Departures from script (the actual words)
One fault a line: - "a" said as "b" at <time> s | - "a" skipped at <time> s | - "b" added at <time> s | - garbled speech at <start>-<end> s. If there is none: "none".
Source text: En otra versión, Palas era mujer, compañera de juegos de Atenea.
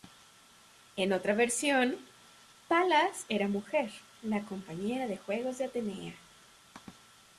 - "la" added at 4.2 s